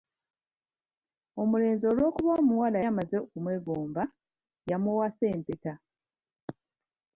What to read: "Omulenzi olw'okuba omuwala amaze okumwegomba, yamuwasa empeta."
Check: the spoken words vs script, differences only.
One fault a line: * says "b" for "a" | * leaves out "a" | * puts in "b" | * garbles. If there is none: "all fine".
all fine